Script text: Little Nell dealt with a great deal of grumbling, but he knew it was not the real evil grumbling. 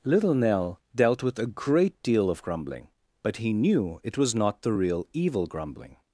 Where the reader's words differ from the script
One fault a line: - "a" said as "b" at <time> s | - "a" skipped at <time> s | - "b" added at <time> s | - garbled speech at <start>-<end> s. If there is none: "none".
none